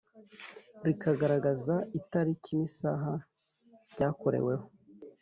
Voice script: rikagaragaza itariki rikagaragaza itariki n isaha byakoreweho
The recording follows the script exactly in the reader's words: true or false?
false